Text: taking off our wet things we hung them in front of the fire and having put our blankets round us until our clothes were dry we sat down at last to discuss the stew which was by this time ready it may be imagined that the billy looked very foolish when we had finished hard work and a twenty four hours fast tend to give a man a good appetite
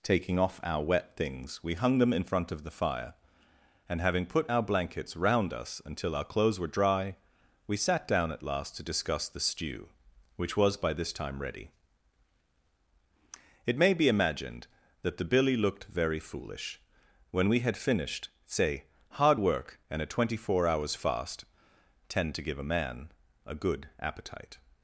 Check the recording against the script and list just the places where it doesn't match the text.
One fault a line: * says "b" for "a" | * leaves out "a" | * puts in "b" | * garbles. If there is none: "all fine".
* puts in "say"